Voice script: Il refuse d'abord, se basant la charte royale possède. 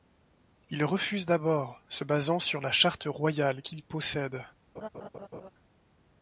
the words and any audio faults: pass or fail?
fail